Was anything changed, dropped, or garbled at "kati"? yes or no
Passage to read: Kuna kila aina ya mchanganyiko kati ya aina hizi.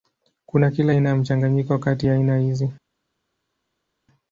no